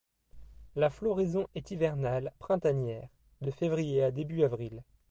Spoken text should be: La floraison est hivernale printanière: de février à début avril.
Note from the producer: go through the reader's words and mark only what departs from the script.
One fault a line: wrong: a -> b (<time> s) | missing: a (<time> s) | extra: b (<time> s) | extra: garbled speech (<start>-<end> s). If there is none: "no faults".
no faults